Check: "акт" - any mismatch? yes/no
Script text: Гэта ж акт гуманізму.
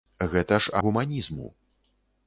yes